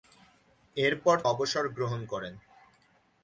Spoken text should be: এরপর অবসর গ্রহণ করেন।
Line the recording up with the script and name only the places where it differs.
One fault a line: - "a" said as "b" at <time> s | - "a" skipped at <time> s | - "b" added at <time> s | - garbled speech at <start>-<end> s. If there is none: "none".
none